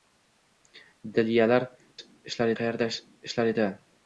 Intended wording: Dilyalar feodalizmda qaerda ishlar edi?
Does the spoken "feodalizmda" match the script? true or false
false